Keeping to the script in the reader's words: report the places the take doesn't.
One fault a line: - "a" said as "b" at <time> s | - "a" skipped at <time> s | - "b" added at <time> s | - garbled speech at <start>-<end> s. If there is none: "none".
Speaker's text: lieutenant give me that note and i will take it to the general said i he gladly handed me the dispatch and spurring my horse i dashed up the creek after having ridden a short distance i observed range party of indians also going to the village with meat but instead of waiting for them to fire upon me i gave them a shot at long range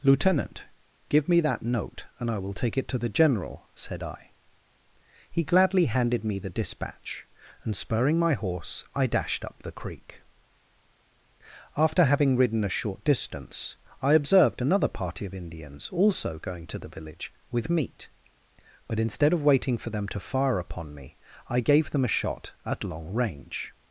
- "range" said as "another" at 14.6 s